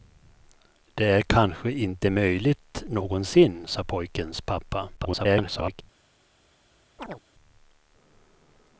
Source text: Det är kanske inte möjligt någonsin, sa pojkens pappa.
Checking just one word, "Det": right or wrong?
right